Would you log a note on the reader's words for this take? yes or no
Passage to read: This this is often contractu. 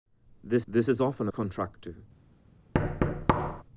no